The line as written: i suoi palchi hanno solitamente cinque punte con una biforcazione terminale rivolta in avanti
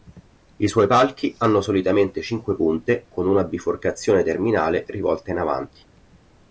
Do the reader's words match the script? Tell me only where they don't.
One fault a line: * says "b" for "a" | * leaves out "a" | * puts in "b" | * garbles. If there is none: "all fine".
all fine